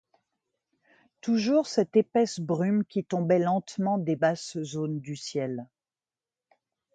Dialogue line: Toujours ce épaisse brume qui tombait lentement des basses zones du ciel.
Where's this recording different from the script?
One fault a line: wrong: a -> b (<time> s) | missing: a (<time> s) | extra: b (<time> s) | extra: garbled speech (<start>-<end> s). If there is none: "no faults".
wrong: ce -> cette (1.7 s)